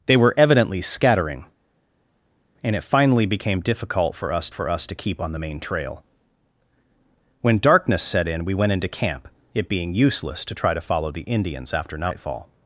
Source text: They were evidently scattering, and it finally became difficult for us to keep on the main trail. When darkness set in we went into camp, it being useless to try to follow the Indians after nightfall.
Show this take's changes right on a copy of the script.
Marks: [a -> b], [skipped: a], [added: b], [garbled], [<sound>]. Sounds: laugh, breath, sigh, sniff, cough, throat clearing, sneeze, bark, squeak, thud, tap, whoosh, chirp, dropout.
They were evidently scattering, and it finally became difficult for us [added: for us] to keep on the main trail. When darkness set in we went into camp, it being useless to try to follow the Indians after nightfall.